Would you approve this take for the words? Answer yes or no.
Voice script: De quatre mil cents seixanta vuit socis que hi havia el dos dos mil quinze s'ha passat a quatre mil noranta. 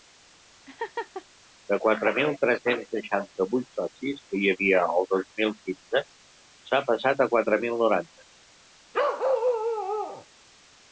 no